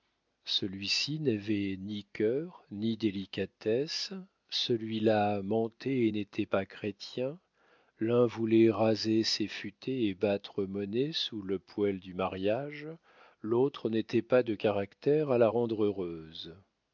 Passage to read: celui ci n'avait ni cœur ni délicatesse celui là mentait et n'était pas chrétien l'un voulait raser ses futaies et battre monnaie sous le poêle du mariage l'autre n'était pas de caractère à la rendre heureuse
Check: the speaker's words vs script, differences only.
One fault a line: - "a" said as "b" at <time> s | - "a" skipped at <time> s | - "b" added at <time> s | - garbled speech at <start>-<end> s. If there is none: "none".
none